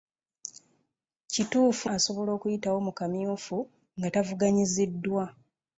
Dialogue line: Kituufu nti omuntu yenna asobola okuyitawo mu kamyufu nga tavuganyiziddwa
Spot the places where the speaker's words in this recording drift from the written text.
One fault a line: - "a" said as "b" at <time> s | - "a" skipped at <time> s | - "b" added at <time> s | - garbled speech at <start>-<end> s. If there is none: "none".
- "nti omuntu yenna" skipped at 1.9 s